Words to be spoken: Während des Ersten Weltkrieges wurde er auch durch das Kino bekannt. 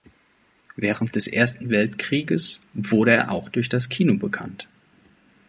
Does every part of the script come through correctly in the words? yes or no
yes